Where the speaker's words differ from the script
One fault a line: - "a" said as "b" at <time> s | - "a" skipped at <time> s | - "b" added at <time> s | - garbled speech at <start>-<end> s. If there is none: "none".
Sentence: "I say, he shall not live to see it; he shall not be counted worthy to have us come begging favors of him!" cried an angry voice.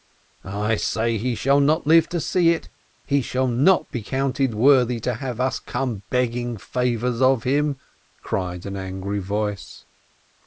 none